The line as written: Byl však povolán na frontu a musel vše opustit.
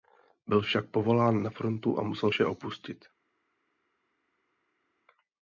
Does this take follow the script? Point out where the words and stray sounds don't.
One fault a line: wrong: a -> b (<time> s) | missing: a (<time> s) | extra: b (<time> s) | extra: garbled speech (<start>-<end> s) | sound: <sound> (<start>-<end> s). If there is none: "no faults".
no faults